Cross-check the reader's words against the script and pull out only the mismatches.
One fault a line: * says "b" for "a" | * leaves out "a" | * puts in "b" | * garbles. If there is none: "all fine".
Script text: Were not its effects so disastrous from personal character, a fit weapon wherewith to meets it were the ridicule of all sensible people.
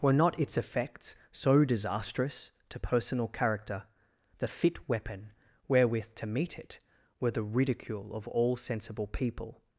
* says "to" for "from"
* says "the" for "a"
* says "meet" for "meets"